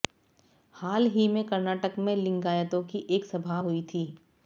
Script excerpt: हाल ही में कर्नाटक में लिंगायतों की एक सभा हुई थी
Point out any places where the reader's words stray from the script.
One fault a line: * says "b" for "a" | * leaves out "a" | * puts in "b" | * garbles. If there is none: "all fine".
all fine